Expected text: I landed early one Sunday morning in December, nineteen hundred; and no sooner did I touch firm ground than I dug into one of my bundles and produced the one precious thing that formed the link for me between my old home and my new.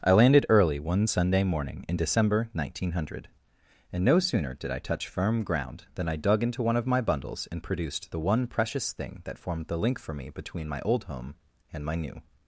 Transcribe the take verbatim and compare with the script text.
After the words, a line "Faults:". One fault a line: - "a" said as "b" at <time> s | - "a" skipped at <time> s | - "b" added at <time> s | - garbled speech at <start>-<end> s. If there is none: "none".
I landed early one Sunday morning in December, nineteen hundred; and no sooner did I touch firm ground than I dug into one of my bundles and produced the one precious thing that formed the link for me between my old home and my new.
Faults:
none